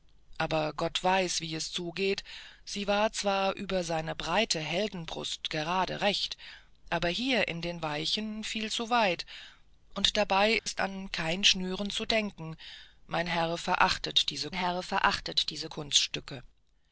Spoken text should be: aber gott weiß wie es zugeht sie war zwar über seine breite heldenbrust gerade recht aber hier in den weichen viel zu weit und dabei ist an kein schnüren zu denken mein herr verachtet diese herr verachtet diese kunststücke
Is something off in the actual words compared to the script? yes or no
no